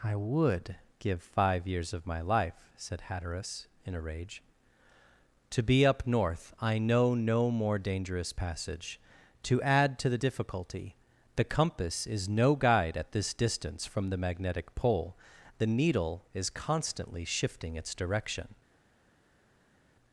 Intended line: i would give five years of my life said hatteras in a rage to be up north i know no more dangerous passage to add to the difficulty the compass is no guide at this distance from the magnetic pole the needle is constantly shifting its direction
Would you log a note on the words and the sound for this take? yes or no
no